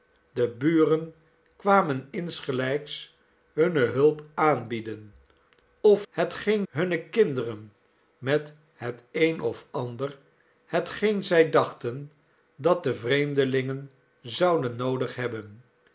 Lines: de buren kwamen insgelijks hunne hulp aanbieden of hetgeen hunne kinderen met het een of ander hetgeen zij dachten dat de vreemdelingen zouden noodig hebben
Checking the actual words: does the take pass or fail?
pass